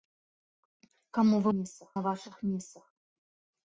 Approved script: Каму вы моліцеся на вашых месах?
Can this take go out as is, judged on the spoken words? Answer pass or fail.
fail